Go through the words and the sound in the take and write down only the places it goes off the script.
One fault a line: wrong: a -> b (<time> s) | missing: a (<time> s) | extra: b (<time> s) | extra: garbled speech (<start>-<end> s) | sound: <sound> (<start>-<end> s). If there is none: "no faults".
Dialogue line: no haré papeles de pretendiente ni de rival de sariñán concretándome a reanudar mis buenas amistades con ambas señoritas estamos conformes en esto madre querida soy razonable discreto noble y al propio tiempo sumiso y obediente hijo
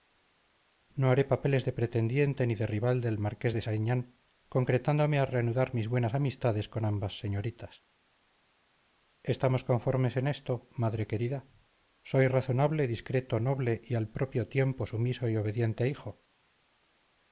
extra: del marqués (3.0 s)